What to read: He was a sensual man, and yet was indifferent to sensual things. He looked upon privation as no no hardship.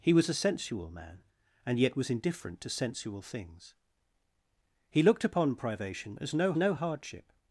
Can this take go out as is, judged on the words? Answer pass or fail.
pass